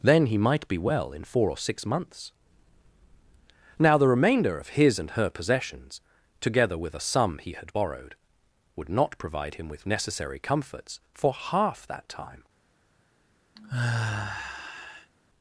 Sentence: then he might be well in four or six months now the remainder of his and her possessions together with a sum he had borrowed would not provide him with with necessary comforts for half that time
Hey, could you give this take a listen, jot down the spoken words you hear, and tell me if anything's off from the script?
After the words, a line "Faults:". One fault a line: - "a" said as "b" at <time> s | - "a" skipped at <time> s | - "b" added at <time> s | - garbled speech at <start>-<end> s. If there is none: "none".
then he might be well in four or six months now the remainder of his and her possessions together with a sum he had borrowed would not provide him with necessary comforts for half that time
Faults:
- "with" skipped at 9.9 s